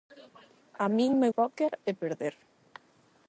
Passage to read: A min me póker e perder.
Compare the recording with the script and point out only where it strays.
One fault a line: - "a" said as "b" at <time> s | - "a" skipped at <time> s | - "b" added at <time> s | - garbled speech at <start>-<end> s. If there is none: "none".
none